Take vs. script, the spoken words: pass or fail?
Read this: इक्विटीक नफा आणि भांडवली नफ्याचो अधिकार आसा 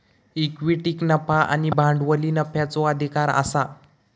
pass